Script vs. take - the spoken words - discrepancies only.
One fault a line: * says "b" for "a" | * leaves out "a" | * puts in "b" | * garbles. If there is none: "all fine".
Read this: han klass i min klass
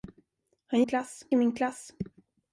all fine